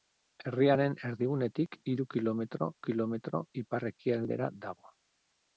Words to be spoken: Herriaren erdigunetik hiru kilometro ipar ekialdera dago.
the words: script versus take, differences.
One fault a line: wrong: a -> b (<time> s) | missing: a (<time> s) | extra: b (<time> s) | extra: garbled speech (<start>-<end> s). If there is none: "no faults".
extra: kilometro (2.9 s)